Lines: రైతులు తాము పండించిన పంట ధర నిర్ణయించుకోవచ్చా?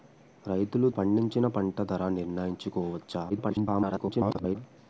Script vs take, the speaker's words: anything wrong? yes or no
yes